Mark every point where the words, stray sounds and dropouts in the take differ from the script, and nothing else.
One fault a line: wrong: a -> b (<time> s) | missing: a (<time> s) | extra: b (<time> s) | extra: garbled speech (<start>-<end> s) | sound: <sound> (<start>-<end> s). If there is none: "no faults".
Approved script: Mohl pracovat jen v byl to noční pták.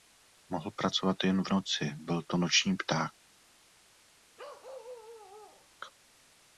extra: noci (1.5 s)
sound: bark (4.4-5.7 s)